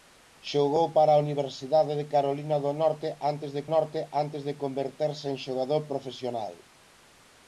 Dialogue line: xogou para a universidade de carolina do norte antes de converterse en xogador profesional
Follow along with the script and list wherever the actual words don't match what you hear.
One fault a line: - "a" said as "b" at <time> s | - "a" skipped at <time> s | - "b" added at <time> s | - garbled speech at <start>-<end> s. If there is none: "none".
- "norte antes de" added at 3.7 s